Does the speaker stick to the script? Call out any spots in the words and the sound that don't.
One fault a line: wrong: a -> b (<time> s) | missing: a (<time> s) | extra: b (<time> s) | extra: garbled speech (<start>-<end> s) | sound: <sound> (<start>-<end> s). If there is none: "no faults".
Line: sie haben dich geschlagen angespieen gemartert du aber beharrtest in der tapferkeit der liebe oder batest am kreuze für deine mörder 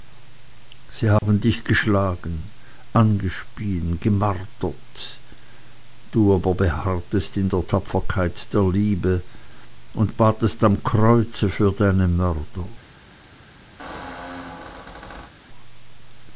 sound: dropout (1.2-1.2 s)
wrong: oder -> und (9.9 s)
sound: squeak (13.8-15.3 s)